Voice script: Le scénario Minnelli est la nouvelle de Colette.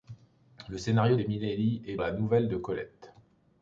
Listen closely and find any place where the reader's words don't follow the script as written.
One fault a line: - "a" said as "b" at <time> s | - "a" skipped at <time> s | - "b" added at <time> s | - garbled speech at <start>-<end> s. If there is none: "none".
none